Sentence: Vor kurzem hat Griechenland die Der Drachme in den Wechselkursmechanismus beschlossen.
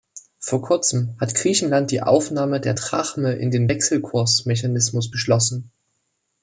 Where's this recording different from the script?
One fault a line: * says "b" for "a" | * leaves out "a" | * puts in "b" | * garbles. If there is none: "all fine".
* puts in "Aufnahme"